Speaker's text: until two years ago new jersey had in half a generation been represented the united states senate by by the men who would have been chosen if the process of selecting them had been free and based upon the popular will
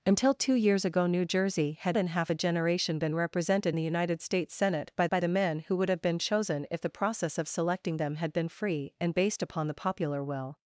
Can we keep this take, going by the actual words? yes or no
yes